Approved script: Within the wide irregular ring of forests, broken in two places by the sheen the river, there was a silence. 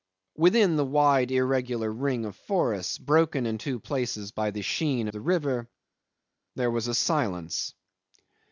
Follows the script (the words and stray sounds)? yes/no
yes